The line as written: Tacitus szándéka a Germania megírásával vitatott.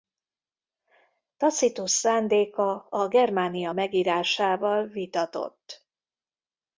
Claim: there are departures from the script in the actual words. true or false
false